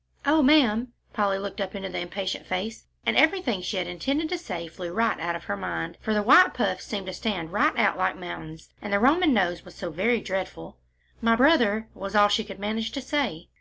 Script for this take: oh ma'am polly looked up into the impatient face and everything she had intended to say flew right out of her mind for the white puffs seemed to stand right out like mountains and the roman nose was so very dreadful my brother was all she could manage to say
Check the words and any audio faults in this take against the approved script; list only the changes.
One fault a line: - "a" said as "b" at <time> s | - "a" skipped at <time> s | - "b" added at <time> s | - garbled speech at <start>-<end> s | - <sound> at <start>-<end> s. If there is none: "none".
none